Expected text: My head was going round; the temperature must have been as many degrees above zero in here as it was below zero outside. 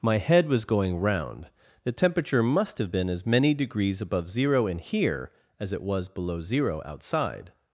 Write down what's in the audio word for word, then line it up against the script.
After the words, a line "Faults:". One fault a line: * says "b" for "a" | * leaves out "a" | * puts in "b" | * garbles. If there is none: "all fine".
My head was going round; the temperature must have been as many degrees above zero in here as it was below zero outside.
Faults:
all fine